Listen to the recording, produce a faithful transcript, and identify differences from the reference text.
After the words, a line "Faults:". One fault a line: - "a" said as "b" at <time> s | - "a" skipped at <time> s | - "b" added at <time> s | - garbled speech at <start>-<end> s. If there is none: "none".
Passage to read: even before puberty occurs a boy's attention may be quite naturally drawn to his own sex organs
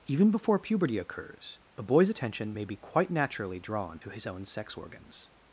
even before puberty occurs a boy's attention may be quite naturally drawn to his own sex organs
Faults:
none